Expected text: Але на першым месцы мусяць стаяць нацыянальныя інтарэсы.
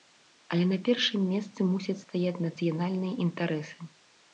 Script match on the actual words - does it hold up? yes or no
yes